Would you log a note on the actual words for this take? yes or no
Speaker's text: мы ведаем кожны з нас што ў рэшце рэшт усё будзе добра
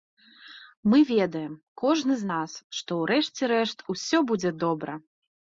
no